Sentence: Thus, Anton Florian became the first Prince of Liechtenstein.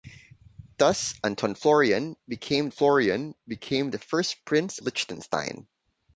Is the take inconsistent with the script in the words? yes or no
yes